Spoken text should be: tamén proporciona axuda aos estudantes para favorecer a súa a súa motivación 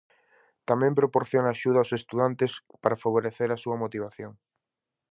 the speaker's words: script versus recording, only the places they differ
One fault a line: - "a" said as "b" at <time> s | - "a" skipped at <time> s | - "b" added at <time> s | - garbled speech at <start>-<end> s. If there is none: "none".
- "a súa" skipped at 3.8 s